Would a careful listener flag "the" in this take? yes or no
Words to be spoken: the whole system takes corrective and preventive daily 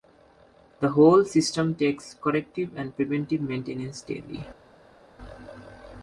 no